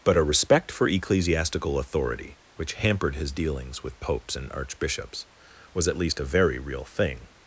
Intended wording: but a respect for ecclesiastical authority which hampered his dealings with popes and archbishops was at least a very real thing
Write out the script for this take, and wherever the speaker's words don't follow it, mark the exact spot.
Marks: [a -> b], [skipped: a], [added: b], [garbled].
but a respect for ecclesiastical authority which hampered his dealings with popes and archbishops was at least a very real thing